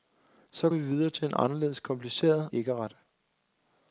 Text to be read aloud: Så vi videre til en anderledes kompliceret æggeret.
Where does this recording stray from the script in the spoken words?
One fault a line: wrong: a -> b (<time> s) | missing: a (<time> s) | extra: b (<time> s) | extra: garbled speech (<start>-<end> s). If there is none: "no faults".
no faults